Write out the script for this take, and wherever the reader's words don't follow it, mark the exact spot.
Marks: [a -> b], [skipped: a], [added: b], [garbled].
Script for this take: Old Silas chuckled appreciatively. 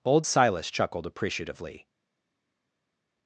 Old Silas chuckled appreciatively.